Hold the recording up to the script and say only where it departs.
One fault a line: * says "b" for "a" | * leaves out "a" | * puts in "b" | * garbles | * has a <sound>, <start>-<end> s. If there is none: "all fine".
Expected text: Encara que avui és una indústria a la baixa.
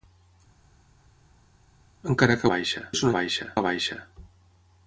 * says "baixa" for "avui"
* says "baixa" for "indústria"